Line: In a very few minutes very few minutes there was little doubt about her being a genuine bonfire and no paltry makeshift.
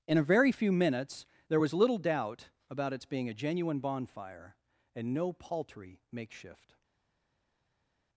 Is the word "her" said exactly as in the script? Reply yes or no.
no